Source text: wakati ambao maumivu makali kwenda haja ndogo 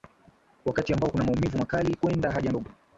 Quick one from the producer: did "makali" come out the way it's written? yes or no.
yes